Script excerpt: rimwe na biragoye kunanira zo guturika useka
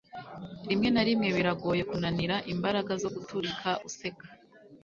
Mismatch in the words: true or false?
true